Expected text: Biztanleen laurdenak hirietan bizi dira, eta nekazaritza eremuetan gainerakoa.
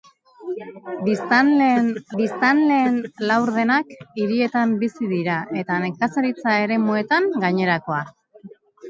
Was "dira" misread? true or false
false